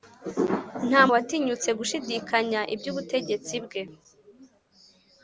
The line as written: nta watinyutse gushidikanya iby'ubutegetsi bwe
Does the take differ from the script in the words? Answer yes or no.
no